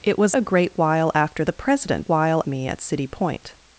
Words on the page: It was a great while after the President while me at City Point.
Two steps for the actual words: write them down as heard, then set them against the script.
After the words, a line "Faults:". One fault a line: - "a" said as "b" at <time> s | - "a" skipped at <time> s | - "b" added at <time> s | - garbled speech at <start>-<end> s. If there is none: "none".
It was a great while after the President while me at City Point.
Faults:
none